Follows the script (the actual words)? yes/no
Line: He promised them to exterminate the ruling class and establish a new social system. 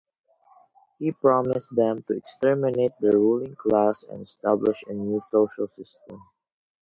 yes